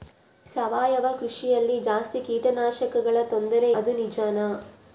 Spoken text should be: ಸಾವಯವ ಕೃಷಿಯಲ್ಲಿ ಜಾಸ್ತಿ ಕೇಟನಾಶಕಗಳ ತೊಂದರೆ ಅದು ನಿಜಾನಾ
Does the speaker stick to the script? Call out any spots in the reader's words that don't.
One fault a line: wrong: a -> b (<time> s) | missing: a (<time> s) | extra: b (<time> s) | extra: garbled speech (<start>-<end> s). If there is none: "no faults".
no faults